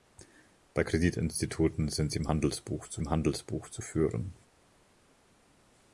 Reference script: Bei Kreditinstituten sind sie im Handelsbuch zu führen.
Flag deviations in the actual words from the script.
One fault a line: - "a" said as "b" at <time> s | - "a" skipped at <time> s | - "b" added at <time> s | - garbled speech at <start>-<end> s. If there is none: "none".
- "im Handelsbuch zu" added at 3.0 s